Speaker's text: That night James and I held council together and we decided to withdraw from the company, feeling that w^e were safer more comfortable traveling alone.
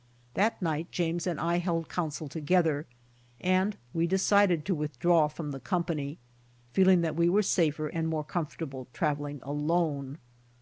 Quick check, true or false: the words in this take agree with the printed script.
false